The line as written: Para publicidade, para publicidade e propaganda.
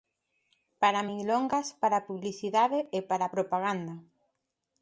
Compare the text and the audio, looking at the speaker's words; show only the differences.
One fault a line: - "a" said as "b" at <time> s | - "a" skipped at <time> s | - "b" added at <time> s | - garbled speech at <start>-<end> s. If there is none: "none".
- "publicidade" said as "milongas" at 1.1 s
- "para" added at 3.1 s